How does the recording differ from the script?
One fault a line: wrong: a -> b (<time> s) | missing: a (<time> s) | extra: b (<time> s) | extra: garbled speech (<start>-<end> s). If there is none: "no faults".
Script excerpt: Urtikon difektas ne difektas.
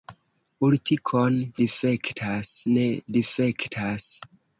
no faults